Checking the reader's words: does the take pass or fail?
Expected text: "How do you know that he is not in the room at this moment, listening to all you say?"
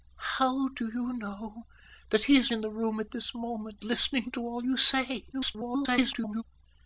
fail